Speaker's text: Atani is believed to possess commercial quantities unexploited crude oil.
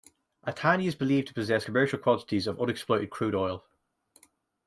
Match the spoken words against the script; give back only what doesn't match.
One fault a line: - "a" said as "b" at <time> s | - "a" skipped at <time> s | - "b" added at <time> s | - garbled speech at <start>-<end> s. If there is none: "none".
- "of" added at 2.4 s